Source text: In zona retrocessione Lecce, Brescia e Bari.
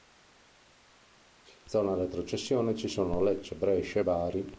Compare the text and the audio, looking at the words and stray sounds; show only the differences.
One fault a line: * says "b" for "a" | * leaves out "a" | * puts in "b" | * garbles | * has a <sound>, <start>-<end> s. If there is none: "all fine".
* puts in "ci sono"